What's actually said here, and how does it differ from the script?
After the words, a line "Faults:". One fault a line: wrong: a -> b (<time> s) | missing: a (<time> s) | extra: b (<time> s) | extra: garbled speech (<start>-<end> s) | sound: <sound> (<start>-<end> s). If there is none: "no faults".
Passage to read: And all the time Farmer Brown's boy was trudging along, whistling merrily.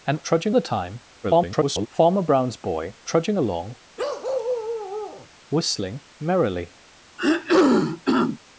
And trudging the time [garbled] Farmer Brown's boy trudging along, whistling merrily.
Faults:
wrong: all -> trudging (0.2 s)
extra: garbled speech (1.2-1.9 s)
missing: was (2.9 s)
sound: bark (4.0-5.3 s)
sound: throat clearing (7.2-8.4 s)